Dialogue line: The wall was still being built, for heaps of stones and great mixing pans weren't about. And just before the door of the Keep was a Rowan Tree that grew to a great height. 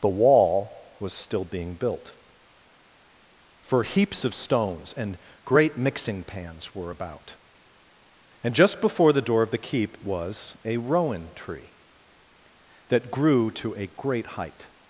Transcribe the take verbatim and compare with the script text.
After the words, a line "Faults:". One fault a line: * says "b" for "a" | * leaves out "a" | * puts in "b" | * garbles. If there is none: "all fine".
The wall was still being built, for heaps of stones and great mixing pans were about. And just before the door of the Keep was a Rowan Tree that grew to a great height.
Faults:
* says "were" for "weren't"